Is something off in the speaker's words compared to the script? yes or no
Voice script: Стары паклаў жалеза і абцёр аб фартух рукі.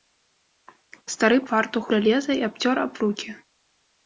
yes